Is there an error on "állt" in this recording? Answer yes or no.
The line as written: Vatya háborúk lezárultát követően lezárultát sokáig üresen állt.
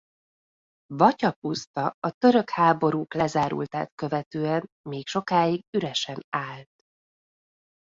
no